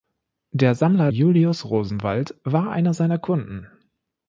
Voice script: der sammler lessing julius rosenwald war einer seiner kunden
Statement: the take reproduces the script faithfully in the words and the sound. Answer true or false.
false